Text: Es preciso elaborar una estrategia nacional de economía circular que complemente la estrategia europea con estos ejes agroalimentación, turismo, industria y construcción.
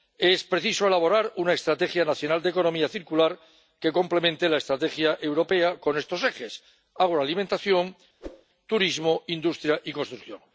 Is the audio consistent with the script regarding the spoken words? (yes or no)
yes